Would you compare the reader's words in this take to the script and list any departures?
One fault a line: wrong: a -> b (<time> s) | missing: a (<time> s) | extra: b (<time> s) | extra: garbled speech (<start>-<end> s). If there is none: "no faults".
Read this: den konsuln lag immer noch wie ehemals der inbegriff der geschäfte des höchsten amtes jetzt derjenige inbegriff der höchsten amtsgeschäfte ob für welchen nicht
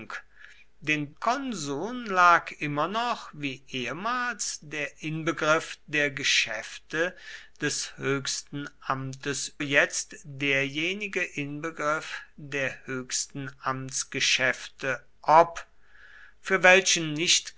no faults